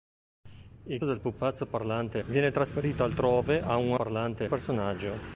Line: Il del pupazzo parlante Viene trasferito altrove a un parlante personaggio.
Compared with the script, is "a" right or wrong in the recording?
right